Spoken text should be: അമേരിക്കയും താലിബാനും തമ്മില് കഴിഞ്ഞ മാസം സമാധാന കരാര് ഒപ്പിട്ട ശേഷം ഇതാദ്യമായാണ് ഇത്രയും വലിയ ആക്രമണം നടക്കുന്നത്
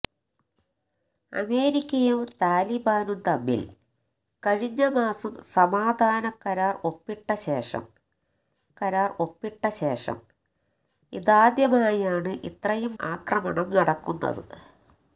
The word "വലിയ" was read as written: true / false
false